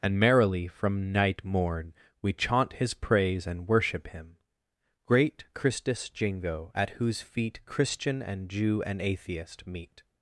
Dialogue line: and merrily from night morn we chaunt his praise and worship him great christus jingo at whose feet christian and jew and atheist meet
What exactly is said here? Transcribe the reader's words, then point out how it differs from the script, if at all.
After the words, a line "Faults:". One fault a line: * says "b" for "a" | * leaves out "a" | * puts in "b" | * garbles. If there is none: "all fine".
and merrily from night morn we chaunt his praise and worship him great christus jingo at whose feet christian and jew and atheist meet
Faults:
all fine